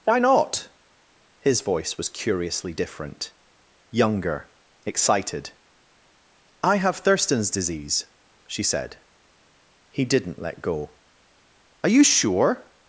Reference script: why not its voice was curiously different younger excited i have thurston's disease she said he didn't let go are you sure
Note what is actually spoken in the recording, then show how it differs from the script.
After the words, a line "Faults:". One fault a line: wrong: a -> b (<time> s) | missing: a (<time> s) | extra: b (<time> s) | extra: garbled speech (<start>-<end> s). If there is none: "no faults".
why not his voice was curiously different younger excited i have thurston's disease she said he didn't let go are you sure
Faults:
wrong: its -> his (1.4 s)